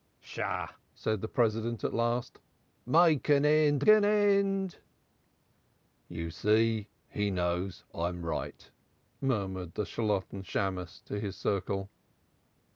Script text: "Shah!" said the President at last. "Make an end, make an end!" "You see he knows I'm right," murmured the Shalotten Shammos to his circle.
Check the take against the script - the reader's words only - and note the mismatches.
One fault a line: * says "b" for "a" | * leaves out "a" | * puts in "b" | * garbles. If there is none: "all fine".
* leaves out "make"